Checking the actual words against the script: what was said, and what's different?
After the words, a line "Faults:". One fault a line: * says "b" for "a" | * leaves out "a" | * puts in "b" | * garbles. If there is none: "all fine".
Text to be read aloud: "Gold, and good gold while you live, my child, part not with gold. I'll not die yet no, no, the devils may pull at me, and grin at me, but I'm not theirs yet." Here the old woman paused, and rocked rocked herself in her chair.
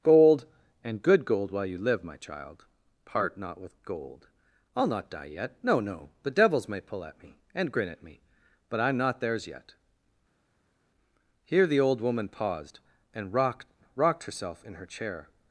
"Gold, and good gold while you live, my child, part not with gold. I'll not die yet no, no, the devils may pull at me, and grin at me, but I'm not theirs yet." Here the old woman paused, and rocked rocked herself in her chair.
Faults:
all fine